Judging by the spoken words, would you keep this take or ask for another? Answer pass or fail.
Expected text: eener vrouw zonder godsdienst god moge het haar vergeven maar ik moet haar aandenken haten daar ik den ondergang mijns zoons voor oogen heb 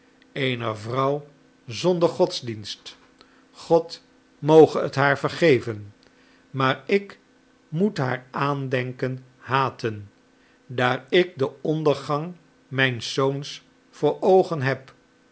pass